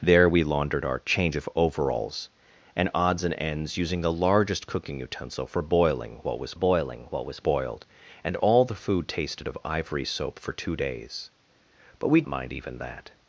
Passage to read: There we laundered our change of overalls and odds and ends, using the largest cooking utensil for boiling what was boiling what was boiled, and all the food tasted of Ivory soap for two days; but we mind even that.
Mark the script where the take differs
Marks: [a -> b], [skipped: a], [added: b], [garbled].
There we laundered our change of overalls and odds and ends, using the largest cooking utensil for boiling what was boiling what was boiled, and all the food tasted of Ivory soap for two days; but we mind even that.